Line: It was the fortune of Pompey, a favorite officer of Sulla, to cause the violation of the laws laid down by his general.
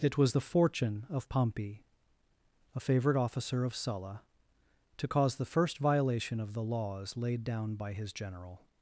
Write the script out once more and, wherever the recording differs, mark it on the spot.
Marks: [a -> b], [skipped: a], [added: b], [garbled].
It was the fortune of Pompey, a favorite officer of Sulla, to cause the [added: first] violation of the laws laid down by his general.